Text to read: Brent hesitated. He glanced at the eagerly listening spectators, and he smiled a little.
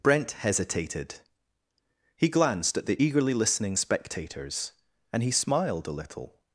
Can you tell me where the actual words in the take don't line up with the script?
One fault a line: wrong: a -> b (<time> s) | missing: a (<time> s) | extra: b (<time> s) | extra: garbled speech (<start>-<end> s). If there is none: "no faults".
no faults